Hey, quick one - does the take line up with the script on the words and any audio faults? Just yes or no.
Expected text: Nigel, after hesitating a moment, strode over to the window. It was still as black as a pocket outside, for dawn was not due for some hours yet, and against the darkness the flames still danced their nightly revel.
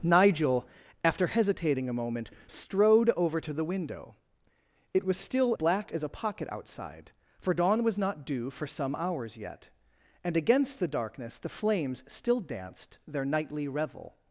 no